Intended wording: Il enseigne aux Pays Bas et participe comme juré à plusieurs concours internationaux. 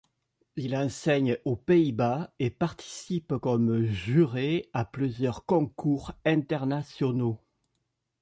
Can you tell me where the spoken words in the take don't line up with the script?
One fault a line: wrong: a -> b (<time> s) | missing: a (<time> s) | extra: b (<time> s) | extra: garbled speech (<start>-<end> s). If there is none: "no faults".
no faults